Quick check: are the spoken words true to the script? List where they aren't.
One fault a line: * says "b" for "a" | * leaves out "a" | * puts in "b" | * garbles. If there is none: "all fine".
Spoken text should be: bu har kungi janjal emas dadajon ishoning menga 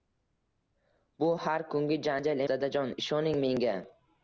* leaves out "emas"